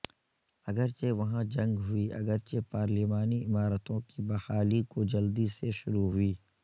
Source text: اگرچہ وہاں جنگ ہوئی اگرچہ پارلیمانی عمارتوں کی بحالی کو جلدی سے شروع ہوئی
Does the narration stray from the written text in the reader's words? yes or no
no